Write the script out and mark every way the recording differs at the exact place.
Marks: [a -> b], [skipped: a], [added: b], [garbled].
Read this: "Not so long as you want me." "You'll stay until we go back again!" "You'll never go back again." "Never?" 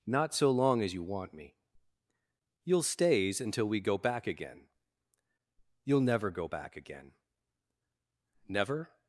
"Not so long as you want me." "You'll [stay -> stays] until we go back again!" "You'll never go back again." "Never?"